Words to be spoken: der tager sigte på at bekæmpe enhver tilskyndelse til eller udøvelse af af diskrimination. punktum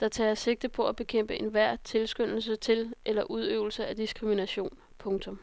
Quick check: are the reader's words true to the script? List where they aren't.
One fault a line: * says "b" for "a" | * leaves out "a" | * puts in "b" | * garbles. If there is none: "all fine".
* leaves out "af"